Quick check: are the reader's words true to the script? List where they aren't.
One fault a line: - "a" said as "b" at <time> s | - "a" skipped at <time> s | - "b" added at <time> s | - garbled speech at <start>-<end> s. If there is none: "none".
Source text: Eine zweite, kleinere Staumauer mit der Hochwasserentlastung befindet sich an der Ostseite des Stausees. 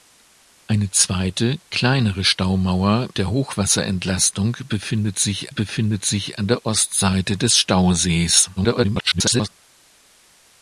- "mit" skipped at 3.1 s
- "befindet sich" added at 5.5 s
- garbled speech at 8.6-9.5 s